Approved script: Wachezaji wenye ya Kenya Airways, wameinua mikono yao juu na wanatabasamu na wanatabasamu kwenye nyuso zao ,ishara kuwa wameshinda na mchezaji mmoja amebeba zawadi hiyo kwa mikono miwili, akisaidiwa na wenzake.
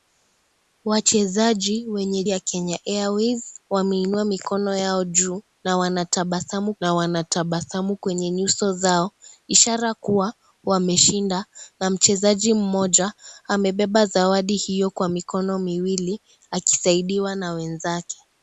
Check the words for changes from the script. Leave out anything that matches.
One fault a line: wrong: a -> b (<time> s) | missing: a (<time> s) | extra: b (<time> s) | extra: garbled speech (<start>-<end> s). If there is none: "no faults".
no faults